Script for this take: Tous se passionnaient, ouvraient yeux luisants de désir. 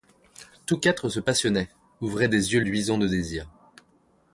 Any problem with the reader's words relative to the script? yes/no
yes